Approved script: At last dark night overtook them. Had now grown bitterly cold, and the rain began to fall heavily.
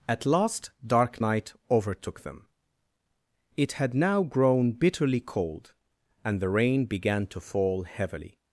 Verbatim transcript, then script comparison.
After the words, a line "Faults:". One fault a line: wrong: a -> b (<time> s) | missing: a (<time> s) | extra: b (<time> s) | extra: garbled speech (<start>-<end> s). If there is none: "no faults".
At last dark night overtook them. It had now grown bitterly cold, and the rain began to fall heavily.
Faults:
extra: It (3.6 s)